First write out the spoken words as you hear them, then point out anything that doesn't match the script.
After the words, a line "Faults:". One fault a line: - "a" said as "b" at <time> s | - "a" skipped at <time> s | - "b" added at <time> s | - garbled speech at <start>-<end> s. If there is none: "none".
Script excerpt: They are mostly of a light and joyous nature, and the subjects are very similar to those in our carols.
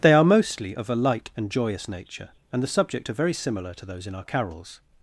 They are mostly of a light and joyous nature, and the subject are very similar to those in our carols.
Faults:
- "subjects" said as "subject" at 2.7 s